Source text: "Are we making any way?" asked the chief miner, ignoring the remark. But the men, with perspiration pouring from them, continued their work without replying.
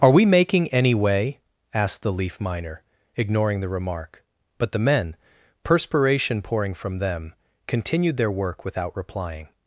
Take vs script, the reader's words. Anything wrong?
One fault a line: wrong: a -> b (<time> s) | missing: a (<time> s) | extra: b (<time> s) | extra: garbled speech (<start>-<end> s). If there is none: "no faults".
wrong: chief -> leaf (2.1 s)
missing: with (5.2 s)